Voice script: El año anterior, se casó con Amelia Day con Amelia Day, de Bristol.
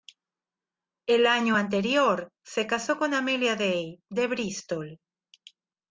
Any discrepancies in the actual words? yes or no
yes